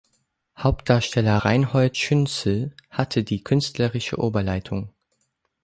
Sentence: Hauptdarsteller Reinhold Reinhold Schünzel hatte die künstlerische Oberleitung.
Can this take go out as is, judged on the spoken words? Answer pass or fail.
fail